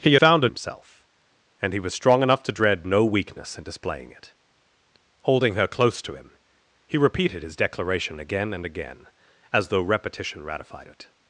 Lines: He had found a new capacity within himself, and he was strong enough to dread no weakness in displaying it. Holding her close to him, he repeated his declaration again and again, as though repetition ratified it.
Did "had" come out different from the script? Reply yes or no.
yes